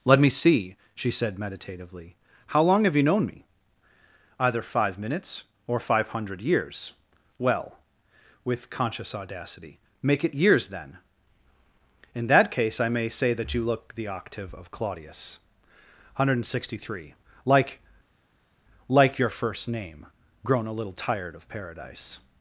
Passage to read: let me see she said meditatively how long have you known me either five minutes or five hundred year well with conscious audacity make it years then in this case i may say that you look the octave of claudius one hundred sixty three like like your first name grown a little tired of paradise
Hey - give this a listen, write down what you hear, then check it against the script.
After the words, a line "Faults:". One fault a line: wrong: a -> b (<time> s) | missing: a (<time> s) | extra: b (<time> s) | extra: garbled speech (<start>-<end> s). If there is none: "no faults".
let me see she said meditatively how long have you known me either five minutes or five hundred years well with conscious audacity make it years then in that case i may say that you look the octave of claudius one hundred sixty three like like your first name grown a little tired of paradise
Faults:
wrong: year -> years (6.4 s)
wrong: this -> that (12.2 s)